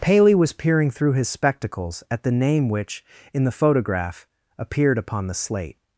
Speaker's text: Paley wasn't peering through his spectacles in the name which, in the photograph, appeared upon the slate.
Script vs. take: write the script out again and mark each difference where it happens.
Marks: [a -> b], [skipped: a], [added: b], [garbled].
Paley [wasn't -> was] peering through his spectacles [in -> at] the name which, in the photograph, appeared upon the slate.